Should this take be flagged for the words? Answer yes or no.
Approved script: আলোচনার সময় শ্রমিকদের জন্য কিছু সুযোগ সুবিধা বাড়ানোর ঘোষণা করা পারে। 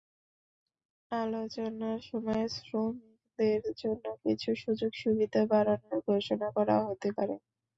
yes